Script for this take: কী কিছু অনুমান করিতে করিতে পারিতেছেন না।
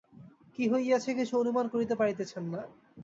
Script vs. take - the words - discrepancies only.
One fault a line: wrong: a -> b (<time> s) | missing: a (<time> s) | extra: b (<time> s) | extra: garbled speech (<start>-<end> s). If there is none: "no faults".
extra: হইয়াছে (0.7 s)
missing: করিতে (1.9 s)